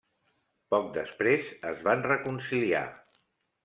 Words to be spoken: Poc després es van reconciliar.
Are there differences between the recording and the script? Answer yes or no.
no